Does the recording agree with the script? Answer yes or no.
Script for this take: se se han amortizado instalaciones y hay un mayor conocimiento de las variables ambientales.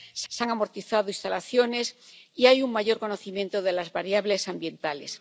yes